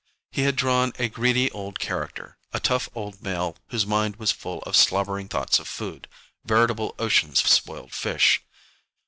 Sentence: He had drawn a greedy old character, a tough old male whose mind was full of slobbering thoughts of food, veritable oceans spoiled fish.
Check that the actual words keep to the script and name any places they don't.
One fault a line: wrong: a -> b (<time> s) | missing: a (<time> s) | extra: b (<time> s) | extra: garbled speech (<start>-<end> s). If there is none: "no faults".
no faults